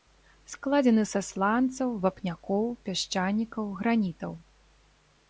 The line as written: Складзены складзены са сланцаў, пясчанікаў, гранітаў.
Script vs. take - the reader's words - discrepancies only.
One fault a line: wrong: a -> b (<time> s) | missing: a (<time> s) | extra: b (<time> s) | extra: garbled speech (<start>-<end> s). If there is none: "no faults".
missing: складзены (1.0 s)
extra: вапнякоў (2.0 s)